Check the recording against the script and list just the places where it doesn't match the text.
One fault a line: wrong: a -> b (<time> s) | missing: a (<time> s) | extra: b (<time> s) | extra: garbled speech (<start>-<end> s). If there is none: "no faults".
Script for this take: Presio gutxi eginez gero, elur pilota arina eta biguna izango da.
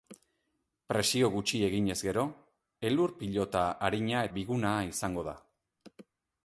missing: eta (4.2 s)